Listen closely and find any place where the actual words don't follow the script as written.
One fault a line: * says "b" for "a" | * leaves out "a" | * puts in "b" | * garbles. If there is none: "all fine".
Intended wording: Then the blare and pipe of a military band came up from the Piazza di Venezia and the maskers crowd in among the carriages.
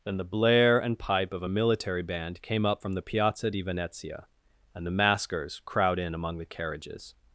all fine